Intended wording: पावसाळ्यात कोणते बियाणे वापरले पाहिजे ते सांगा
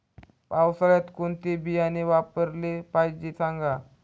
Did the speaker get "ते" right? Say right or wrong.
wrong